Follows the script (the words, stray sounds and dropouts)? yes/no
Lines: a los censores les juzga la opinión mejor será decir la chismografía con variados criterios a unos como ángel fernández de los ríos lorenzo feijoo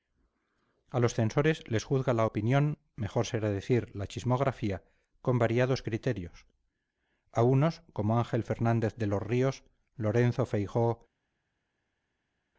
yes